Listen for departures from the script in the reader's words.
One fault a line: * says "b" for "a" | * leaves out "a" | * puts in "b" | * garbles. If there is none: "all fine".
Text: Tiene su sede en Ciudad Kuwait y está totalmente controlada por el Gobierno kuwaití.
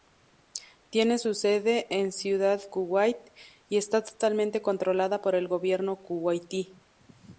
all fine